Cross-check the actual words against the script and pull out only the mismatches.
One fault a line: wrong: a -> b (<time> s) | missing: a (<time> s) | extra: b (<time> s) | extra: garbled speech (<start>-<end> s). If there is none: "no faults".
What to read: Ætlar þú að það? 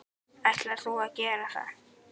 extra: gera (1.2 s)